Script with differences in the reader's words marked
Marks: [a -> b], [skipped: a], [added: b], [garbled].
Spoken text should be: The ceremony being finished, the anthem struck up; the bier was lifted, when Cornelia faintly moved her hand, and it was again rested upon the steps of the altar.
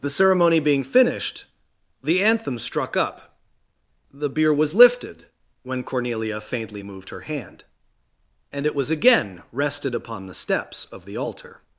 The ceremony being finished, the anthem struck up; the bier was lifted, when Cornelia faintly moved her hand, and it was again rested upon the steps of the altar.